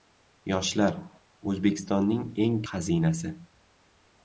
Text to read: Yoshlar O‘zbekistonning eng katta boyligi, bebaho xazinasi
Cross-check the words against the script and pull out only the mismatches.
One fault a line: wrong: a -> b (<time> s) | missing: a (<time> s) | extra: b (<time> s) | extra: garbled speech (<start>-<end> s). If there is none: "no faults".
missing: katta boyligi bebaho (2.5 s)